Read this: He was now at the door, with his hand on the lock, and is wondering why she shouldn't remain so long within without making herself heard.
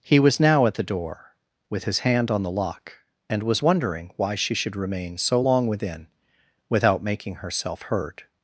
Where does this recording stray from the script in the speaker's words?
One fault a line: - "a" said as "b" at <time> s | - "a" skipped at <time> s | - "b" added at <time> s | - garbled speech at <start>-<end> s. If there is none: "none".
- "is" said as "was" at 3.4 s
- "shouldn't" said as "should" at 4.5 s